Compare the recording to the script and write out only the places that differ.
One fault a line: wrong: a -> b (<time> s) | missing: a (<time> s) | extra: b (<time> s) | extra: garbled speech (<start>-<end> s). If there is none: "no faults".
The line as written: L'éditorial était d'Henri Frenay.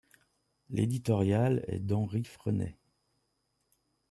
wrong: était -> est (1.7 s)